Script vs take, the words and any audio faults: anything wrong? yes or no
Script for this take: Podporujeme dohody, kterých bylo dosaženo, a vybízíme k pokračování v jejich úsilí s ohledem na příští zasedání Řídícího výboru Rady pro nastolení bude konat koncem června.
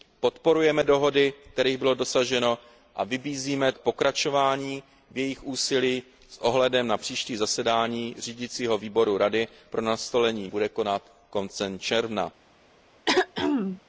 yes